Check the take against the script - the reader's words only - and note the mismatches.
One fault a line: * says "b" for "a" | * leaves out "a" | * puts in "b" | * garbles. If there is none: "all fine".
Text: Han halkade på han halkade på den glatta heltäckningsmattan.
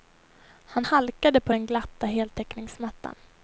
* leaves out "han halkade på"